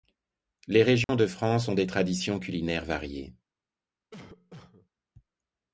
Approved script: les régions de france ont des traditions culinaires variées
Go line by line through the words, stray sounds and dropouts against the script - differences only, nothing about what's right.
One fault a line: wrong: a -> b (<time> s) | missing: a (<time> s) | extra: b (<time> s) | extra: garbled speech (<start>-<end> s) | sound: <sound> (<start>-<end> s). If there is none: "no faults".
sound: dropout (1.0-1.1 s)
sound: cough (4.1-4.9 s)